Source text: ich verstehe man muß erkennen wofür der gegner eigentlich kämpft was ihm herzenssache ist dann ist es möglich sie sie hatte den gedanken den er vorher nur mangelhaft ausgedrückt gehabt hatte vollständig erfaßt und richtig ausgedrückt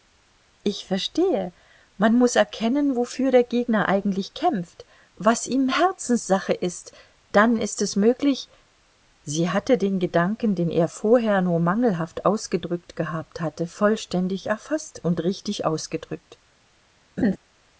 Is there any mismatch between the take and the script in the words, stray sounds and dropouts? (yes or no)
yes